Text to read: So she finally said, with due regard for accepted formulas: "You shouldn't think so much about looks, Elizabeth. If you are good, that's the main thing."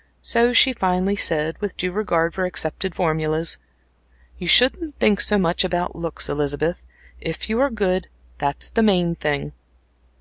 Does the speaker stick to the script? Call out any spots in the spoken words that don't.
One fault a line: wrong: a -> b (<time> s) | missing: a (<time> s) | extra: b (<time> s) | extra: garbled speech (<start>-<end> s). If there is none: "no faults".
no faults